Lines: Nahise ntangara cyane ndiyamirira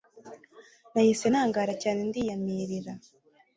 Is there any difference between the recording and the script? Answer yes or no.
no